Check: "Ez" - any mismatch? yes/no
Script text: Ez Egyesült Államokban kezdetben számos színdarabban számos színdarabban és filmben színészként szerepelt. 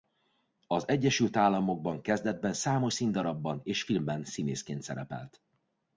yes